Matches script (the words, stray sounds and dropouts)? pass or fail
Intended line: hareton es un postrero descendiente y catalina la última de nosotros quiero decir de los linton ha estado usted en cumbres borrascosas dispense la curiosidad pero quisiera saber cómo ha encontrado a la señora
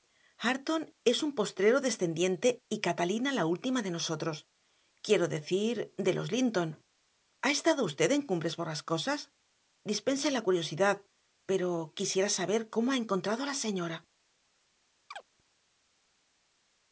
fail